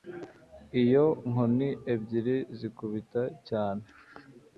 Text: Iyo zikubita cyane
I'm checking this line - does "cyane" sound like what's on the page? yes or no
yes